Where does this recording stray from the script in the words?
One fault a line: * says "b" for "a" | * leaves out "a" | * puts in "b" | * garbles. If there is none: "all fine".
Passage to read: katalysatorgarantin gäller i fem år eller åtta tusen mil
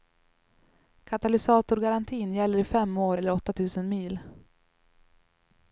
all fine